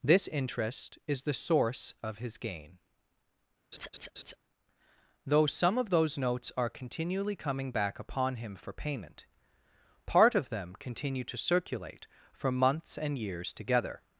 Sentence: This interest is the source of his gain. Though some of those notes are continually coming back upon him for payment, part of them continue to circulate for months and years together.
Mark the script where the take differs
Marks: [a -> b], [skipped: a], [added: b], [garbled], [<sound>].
This interest is the source of his gain. [laugh] Though some of those notes are continually coming back upon him for payment, part of them continue to circulate for months and years together.